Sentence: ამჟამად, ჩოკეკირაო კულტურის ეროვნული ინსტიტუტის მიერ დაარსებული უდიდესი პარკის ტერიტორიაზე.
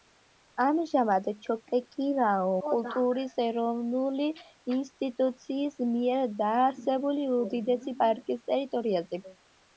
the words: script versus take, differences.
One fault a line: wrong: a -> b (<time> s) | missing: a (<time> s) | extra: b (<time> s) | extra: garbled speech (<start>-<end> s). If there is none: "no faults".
no faults